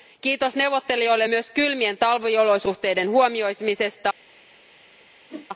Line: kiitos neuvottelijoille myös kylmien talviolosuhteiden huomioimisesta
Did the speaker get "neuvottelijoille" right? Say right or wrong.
right